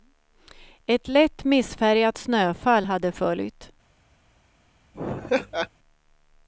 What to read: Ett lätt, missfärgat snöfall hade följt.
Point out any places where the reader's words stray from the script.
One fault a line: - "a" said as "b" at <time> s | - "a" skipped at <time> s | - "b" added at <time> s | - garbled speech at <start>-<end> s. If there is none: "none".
none